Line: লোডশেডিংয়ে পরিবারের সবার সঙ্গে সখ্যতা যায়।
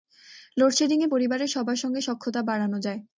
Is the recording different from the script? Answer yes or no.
yes